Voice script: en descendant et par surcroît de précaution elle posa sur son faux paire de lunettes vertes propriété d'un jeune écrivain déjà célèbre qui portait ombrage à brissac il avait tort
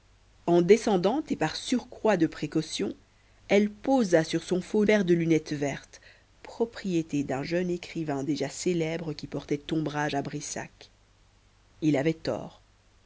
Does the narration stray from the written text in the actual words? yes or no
no